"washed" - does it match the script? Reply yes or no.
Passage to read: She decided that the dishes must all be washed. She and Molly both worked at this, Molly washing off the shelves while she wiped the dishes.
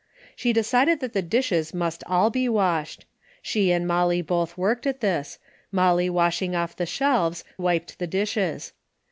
yes